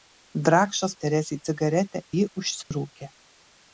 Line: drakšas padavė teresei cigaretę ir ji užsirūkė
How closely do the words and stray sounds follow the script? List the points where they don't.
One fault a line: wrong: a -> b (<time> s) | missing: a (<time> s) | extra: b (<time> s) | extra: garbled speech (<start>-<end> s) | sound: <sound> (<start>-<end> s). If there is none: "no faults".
missing: padavė (0.9 s)
missing: ir (2.0 s)
sound: dropout (2.6-2.7 s)